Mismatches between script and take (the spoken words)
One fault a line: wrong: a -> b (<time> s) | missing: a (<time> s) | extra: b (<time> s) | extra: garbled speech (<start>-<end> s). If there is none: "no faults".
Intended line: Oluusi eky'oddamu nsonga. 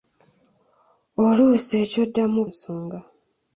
no faults